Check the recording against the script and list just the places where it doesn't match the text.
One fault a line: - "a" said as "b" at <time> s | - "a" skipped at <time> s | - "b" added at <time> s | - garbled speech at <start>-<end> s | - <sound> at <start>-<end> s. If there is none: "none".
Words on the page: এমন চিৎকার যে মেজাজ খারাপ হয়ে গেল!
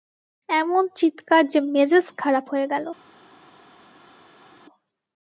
none